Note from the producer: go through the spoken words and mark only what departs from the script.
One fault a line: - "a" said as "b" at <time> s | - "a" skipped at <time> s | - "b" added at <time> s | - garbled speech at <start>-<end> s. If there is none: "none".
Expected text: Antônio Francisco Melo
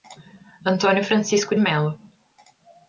none